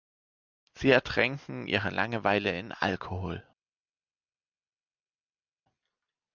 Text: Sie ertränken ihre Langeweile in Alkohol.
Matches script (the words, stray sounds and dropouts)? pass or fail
pass